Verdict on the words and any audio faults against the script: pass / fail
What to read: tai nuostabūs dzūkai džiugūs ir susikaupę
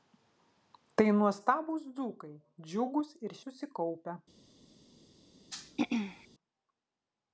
fail